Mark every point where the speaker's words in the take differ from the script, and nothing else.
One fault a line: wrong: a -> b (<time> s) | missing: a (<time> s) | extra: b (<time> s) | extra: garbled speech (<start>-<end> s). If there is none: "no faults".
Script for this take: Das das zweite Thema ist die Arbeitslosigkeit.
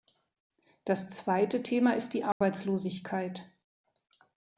missing: das (1.1 s)